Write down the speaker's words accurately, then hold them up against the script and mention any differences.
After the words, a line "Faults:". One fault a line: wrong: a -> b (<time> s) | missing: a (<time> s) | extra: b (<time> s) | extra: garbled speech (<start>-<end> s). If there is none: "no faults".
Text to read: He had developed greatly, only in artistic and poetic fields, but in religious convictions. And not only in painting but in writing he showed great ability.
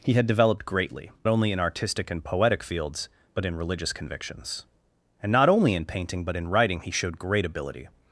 He had developed greatly, only in artistic and poetic fields, but in religious convictions. And not only in painting but in writing he showed great ability.
Faults:
no faults